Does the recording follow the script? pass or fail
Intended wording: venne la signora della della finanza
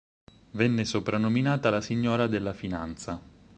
fail